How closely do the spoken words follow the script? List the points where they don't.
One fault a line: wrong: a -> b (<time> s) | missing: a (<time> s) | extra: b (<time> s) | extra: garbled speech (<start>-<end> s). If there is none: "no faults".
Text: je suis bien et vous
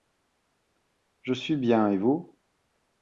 no faults